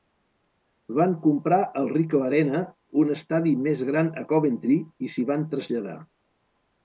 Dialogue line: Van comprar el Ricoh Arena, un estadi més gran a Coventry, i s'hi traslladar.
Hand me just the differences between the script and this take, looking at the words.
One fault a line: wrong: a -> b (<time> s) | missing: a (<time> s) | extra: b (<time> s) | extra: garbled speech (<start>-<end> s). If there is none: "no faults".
extra: van (5.3 s)